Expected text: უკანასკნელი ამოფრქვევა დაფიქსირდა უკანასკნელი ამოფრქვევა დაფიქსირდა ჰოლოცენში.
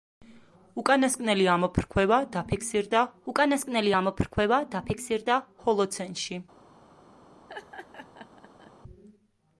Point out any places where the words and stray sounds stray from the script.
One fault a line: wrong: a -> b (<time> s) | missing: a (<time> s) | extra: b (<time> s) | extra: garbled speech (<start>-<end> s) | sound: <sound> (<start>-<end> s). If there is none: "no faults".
sound: laugh (7.5-8.7 s)